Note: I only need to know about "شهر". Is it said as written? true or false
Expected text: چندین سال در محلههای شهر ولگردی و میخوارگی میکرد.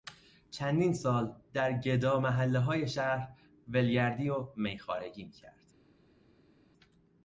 true